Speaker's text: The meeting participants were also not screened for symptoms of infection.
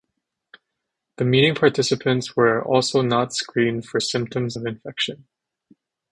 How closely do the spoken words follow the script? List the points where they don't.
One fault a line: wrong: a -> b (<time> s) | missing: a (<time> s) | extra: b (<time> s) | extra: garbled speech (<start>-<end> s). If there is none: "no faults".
no faults